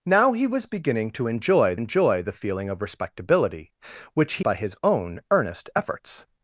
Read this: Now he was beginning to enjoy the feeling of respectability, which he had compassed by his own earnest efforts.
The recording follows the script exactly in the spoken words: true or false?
false